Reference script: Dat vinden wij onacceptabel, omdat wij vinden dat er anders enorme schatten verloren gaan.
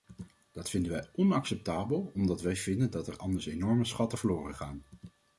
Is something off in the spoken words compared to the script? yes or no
no